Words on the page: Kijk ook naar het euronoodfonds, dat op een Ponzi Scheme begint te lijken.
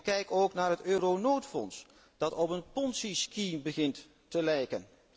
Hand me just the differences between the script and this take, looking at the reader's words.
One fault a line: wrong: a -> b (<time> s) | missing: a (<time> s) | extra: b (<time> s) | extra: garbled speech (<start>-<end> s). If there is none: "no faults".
no faults